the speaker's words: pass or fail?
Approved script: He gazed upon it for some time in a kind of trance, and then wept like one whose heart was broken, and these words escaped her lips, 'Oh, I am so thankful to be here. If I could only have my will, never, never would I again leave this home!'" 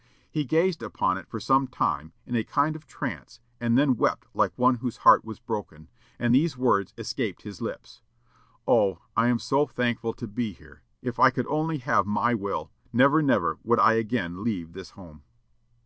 fail